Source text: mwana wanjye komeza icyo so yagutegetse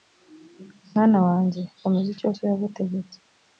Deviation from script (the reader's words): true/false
false